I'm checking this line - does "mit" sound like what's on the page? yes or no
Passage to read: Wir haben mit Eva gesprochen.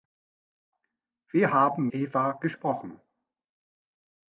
no